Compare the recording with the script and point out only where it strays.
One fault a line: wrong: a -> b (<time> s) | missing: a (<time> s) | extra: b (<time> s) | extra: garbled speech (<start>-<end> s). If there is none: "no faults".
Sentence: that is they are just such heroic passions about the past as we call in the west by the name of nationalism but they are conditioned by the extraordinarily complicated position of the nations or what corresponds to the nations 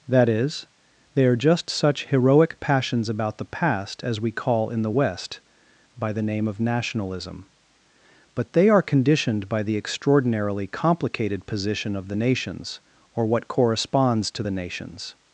no faults